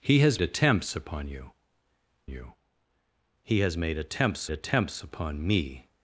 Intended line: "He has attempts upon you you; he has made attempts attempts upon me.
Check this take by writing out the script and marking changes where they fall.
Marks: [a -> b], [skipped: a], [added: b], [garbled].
"He has attempts upon you you; he has made attempts attempts upon me.